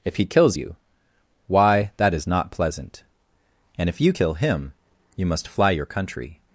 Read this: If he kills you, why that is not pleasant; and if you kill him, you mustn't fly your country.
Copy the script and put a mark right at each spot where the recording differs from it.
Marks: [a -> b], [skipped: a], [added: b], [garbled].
If he kills you, why that is not pleasant; and if you kill him, you [mustn't -> must] fly your country.